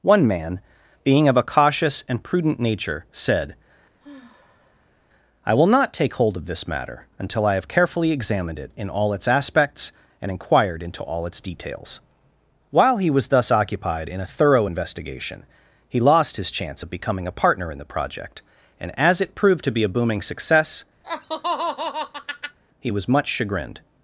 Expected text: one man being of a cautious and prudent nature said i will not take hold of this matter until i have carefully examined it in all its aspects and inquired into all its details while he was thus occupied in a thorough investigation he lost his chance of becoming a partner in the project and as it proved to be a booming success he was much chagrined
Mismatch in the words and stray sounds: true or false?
true